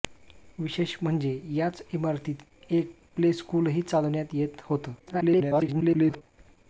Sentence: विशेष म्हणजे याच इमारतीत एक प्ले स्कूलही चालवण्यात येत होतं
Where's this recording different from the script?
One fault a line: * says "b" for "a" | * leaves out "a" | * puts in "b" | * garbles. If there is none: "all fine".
* garbles